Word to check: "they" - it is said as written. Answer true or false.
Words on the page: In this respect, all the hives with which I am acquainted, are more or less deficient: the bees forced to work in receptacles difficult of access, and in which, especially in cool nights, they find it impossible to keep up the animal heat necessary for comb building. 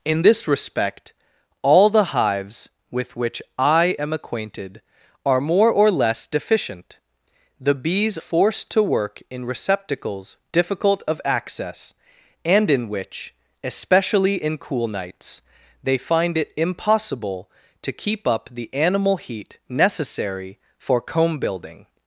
true